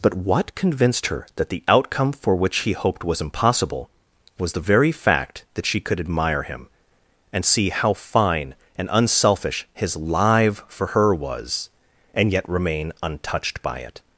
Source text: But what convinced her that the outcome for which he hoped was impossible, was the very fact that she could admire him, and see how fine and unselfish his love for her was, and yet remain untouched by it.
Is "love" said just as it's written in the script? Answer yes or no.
no